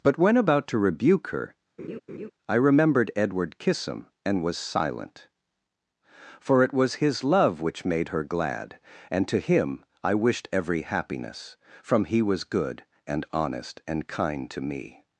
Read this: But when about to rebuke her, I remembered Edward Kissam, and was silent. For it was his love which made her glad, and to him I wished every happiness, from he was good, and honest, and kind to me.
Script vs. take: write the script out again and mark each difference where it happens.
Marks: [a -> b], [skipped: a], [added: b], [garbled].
But when about to rebuke her, I remembered Edward Kissam, and was silent. For it was his love which made her glad, and to him I wished every happiness, from he was good, and honest, and kind to me.